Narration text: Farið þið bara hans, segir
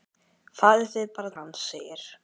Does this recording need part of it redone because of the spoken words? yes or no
no